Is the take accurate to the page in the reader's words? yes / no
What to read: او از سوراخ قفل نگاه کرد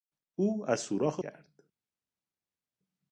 no